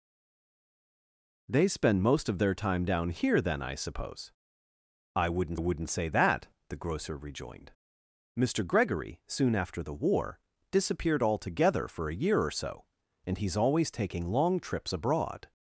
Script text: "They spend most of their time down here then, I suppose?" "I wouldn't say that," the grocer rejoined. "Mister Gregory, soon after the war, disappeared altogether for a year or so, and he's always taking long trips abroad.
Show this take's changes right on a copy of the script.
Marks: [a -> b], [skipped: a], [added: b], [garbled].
"They spend most of their time down here then, I suppose?" "I wouldn't [added: wouldn't] say that," the grocer rejoined. "Mister Gregory, soon after the war, disappeared altogether for a year or so, and he's always taking long trips abroad.